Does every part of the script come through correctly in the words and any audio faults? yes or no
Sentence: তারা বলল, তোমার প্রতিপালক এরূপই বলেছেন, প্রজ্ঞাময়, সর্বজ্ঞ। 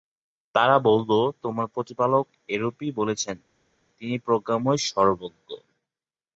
no